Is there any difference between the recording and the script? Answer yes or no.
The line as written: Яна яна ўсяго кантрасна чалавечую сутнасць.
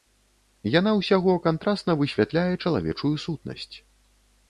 yes